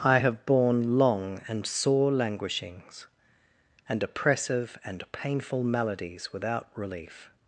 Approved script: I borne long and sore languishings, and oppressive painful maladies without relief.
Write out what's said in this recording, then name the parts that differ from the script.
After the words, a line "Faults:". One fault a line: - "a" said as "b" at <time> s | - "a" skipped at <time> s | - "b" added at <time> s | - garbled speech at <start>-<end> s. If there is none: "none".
I have borne long and sore languishings, and oppressive and painful maladies without relief.
Faults:
- "have" added at 0.1 s
- "and" added at 4.8 s